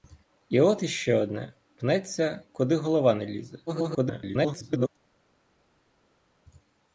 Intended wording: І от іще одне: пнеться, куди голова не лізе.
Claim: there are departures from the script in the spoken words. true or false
true